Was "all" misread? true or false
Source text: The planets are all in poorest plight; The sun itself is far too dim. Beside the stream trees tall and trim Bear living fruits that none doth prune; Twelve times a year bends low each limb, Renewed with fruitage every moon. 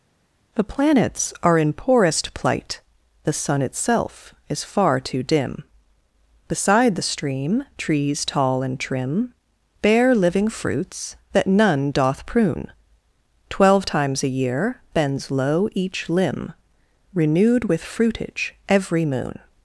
true